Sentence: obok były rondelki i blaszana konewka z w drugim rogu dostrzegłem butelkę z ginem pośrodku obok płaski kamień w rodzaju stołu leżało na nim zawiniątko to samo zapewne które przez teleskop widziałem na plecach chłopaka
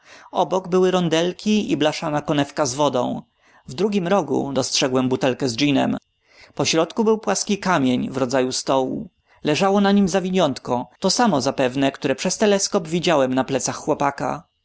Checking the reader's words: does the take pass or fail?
fail